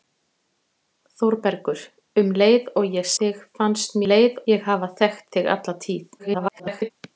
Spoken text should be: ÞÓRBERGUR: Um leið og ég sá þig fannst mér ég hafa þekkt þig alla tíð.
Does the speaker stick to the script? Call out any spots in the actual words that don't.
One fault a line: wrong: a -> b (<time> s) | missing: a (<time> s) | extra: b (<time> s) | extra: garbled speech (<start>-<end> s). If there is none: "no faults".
missing: sá (3.1 s)
wrong: mér -> leið (4.1 s)
extra: garbled speech (6.2-6.9 s)